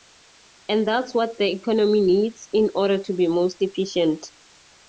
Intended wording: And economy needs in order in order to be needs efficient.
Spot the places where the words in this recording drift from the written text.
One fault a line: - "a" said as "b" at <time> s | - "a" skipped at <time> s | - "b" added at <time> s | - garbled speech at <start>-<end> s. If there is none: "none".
- "that's what the" added at 0.9 s
- "in order" skipped at 3.0 s
- "needs" said as "most" at 3.3 s